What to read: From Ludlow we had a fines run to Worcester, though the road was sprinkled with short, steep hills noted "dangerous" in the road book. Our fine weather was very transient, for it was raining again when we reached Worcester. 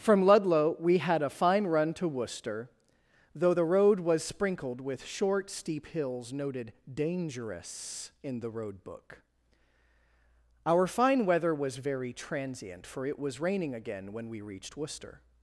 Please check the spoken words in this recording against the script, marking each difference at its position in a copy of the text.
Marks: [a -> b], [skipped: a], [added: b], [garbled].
From Ludlow we had a [fines -> fine] run to Worcester, though the road was sprinkled with short, steep hills noted "dangerous" in the road book. Our fine weather was very transient, for it was raining again when we reached Worcester.